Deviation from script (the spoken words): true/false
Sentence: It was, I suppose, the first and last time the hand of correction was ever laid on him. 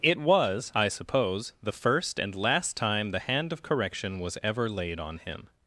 false